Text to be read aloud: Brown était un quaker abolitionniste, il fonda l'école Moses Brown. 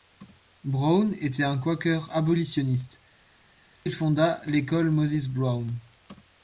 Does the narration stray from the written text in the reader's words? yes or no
no